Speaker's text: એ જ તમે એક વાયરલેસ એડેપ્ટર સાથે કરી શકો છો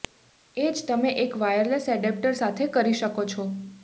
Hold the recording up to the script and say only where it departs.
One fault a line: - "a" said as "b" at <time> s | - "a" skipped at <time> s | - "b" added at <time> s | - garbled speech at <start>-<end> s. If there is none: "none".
none